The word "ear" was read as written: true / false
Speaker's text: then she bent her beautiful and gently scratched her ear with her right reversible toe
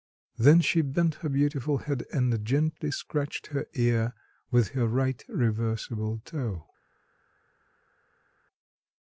true